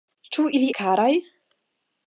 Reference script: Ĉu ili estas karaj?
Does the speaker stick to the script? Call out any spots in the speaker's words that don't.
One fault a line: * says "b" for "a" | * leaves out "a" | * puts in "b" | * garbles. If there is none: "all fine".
* leaves out "estas"